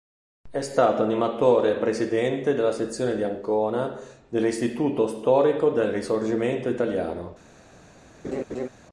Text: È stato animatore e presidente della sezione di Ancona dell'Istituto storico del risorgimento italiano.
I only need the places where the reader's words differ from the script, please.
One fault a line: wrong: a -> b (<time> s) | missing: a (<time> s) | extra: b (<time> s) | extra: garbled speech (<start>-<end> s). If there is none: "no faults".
no faults